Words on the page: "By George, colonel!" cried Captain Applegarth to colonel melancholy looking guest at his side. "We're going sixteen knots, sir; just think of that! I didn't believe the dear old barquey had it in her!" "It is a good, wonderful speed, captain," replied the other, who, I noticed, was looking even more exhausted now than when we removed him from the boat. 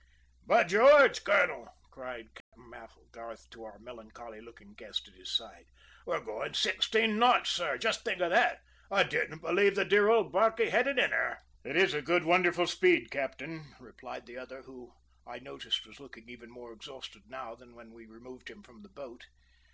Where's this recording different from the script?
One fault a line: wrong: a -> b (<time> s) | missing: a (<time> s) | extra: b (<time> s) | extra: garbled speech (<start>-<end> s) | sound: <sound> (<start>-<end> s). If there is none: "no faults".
sound: dropout (2.4-2.5 s)
wrong: colonel -> our (3.6 s)